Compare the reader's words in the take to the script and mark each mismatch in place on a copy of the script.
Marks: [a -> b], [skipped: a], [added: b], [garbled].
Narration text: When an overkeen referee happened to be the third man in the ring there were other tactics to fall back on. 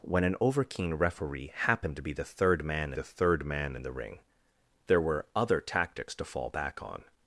When an overkeen referee happened to be the third man [added: the third man] in the ring there were other tactics to fall back on.